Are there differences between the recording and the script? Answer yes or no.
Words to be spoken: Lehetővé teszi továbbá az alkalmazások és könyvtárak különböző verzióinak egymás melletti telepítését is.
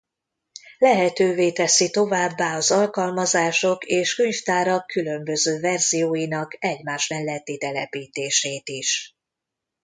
no